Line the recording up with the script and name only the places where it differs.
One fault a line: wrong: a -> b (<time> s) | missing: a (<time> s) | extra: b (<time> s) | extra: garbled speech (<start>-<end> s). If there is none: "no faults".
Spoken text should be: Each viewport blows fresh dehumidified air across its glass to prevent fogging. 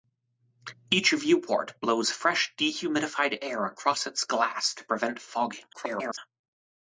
extra: garbled speech (5.7-6.2 s)